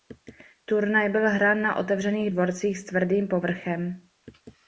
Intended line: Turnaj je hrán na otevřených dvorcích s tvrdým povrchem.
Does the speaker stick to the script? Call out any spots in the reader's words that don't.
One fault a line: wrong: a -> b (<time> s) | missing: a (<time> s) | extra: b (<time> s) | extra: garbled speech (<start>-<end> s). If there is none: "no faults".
wrong: je -> byl (1.1 s)